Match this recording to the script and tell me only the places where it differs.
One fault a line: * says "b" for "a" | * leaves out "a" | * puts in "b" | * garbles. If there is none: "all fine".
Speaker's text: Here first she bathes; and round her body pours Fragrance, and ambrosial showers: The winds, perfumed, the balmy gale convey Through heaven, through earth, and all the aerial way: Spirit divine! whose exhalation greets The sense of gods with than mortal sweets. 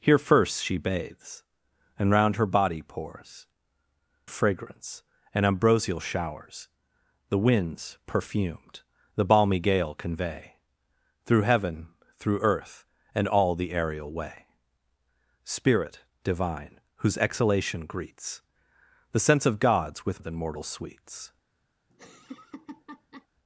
all fine